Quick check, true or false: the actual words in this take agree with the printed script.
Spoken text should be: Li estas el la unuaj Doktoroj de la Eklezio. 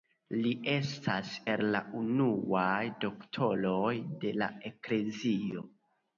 true